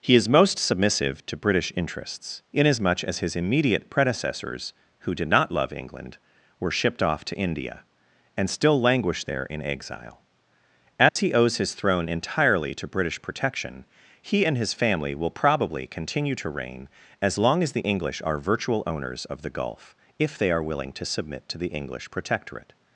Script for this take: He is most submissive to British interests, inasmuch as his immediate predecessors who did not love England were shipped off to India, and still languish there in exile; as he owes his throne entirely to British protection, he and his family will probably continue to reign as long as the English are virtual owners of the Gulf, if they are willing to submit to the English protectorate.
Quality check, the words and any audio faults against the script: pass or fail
fail